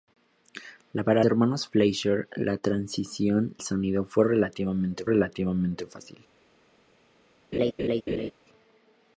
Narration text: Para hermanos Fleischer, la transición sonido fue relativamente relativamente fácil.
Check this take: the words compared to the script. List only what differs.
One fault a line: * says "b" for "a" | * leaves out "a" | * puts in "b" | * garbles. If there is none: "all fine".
all fine